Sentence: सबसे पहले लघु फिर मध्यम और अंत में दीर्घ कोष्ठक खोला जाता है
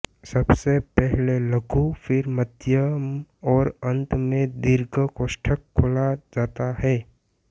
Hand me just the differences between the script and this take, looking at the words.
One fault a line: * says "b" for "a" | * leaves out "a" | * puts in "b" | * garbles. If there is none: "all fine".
all fine